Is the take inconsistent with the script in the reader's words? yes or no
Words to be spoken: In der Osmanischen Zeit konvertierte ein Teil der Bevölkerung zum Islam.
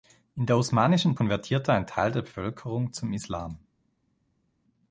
yes